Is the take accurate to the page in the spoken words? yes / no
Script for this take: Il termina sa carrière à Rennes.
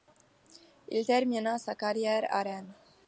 yes